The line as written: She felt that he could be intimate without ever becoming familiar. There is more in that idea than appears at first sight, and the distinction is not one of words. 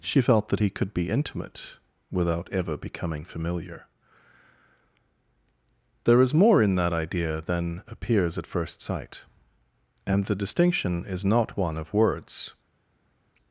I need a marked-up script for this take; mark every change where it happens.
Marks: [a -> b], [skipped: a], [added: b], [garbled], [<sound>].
She felt that he could be intimate without ever becoming familiar. There is more in that idea than appears at first sight, and the distinction is not one of words.